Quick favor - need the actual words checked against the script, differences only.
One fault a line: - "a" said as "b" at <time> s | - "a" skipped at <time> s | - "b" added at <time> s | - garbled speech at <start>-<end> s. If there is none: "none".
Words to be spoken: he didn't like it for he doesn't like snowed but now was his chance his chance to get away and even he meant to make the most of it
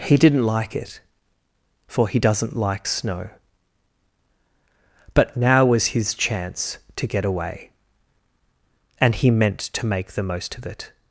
- "snowed" said as "snow" at 2.8 s
- "his chance" skipped at 6.8 s
- "even" skipped at 9.1 s